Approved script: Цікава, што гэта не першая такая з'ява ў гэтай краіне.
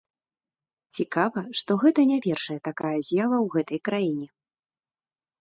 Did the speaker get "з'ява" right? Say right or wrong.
right